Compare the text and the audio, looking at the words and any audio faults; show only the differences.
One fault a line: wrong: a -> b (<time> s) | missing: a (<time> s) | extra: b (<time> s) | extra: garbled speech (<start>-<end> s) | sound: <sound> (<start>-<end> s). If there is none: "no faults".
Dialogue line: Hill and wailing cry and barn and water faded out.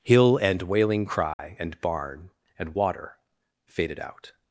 sound: dropout (1.3-1.4 s)